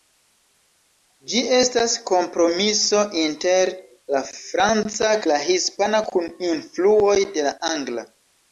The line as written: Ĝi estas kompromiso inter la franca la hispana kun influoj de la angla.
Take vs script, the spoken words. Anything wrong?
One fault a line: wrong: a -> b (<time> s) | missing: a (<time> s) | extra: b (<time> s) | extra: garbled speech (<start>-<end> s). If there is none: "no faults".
no faults